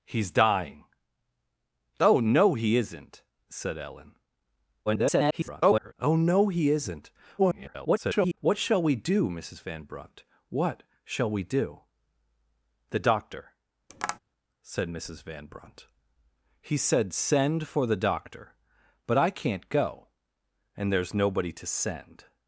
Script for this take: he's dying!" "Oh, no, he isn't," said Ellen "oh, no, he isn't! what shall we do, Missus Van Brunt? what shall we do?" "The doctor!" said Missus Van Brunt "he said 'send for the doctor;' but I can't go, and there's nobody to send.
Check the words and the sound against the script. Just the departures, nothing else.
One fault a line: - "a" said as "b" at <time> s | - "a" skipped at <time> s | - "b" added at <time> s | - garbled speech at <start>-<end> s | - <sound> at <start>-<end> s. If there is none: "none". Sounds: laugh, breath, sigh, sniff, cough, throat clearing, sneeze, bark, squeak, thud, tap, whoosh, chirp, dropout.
- garbled speech at 4.9-5.9 s
- garbled speech at 7.4-8.4 s
- tap at 13.9-14.2 s